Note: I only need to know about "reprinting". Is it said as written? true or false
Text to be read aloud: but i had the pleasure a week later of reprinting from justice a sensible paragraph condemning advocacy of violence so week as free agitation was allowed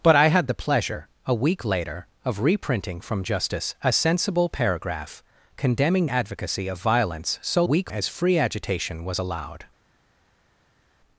true